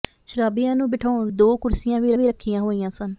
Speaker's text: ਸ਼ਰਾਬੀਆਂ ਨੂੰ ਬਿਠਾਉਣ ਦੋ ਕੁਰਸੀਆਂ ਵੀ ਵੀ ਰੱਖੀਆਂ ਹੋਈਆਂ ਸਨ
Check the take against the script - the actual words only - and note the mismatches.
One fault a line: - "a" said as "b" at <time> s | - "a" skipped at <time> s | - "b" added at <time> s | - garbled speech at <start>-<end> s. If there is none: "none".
none